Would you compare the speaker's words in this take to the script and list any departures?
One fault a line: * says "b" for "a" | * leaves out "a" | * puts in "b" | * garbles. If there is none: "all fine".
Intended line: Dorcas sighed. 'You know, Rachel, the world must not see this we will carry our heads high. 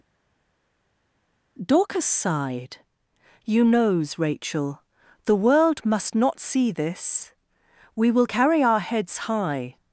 * says "knows" for "know"